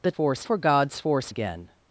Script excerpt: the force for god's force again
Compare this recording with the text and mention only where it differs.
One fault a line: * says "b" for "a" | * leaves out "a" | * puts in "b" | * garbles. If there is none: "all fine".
all fine